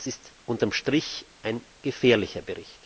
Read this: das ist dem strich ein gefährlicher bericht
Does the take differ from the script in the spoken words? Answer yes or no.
yes